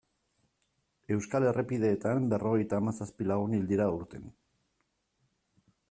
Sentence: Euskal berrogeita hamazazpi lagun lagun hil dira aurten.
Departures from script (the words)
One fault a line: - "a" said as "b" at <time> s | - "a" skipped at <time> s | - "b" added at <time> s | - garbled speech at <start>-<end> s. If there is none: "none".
- "errepideetan" added at 1.5 s
- "lagun" skipped at 3.5 s